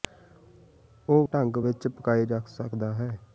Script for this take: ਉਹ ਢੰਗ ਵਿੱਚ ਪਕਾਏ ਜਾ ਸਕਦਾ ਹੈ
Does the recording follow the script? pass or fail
pass